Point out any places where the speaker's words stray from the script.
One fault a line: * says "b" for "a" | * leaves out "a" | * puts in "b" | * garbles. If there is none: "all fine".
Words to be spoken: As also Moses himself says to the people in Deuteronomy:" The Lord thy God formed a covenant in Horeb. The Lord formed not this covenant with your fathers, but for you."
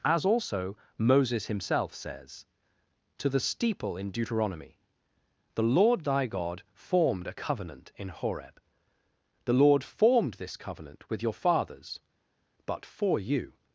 * says "steeple" for "people"
* leaves out "not"